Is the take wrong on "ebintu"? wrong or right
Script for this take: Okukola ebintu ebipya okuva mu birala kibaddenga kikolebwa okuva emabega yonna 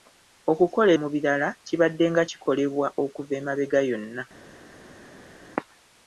wrong